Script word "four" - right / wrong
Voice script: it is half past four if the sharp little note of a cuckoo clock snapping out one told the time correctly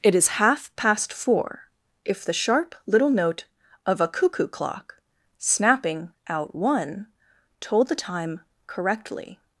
right